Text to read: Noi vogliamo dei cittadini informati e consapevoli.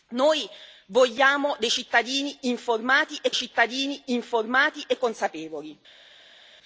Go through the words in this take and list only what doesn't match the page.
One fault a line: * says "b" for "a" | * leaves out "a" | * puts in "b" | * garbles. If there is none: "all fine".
* puts in "cittadini informati e"